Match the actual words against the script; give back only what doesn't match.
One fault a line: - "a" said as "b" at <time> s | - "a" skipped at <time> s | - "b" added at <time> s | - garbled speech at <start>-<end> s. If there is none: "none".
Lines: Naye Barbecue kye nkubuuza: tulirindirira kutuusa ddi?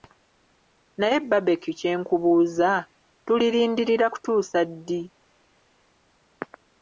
none